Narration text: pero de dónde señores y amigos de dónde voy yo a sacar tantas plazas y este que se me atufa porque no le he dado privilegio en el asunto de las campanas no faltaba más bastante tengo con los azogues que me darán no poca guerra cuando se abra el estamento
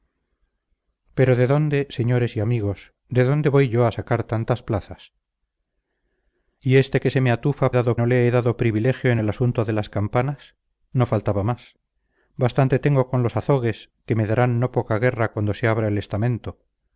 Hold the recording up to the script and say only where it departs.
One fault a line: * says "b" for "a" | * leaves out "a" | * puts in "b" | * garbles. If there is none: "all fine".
* says "dado" for "porque"